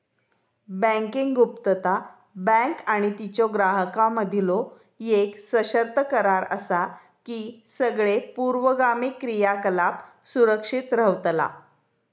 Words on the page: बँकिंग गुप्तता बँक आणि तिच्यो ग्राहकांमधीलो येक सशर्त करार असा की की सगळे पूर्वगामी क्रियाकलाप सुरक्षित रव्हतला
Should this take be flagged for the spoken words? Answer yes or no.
yes